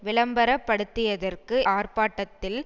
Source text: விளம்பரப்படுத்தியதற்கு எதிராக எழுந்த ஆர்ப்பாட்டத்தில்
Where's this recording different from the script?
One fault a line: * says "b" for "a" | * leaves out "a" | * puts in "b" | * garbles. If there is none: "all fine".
* leaves out "எதிராக எழுந்த"